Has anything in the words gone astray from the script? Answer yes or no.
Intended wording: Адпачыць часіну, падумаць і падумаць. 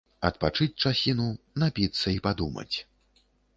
yes